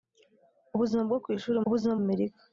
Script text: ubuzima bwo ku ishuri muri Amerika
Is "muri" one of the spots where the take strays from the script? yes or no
yes